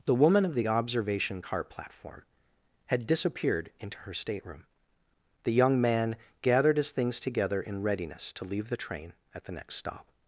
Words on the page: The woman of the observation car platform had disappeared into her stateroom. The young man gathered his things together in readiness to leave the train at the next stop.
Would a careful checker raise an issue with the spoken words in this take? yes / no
no